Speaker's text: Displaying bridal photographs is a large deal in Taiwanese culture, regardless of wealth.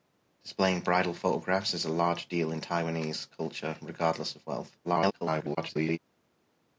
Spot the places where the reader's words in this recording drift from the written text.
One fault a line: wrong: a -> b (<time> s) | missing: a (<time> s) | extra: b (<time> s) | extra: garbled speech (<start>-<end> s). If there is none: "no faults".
extra: garbled speech (4.8-6.0 s)